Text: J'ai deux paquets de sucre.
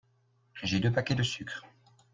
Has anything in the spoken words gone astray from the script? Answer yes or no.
no